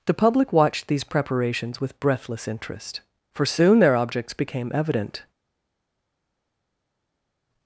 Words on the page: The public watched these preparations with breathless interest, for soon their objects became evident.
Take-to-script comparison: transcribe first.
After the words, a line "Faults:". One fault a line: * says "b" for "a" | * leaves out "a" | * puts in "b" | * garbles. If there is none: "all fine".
The public watched these preparations with breathless interest, for soon their objects became evident.
Faults:
all fine